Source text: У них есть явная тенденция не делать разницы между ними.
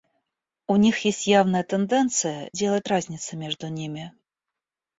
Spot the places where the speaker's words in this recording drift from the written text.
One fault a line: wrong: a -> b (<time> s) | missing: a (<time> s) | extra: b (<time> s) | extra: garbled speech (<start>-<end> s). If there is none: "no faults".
missing: не (2.5 s)